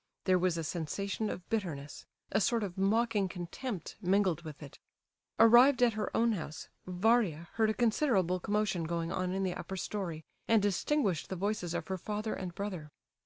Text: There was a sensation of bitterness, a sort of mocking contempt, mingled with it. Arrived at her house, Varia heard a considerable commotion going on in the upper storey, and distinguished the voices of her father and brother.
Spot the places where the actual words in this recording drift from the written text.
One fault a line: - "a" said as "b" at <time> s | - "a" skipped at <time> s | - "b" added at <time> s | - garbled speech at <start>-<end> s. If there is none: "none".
- "own" added at 6.2 s